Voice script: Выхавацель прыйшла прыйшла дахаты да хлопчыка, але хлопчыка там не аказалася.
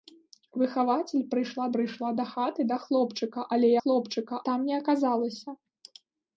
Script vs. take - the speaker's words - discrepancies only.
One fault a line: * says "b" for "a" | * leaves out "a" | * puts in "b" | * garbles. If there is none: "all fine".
all fine